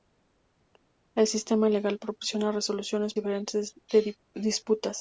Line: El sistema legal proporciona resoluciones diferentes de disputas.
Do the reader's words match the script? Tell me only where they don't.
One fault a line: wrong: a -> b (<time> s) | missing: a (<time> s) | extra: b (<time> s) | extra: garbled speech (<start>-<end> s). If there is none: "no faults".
no faults